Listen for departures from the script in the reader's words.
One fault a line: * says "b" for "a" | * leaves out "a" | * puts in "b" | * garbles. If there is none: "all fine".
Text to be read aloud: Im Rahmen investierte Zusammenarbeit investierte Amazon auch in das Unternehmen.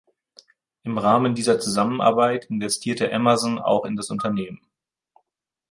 * says "dieser" for "investierte"